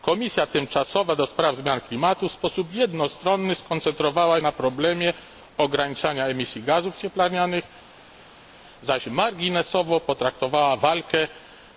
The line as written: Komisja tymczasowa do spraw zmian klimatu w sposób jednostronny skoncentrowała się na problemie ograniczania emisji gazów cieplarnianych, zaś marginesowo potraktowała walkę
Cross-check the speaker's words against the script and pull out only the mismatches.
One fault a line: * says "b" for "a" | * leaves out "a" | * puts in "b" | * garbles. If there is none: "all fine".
* leaves out "się"